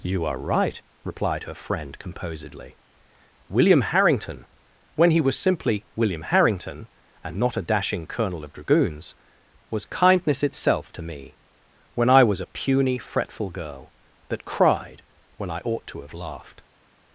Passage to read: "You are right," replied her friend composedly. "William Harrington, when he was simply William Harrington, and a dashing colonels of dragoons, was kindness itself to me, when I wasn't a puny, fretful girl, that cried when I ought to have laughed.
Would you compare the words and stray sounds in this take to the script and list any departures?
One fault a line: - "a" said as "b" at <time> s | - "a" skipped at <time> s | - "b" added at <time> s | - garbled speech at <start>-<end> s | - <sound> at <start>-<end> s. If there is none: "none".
- "not" added at 7.4 s
- "colonels" said as "colonel" at 8.1 s
- "wasn't" said as "was" at 12.2 s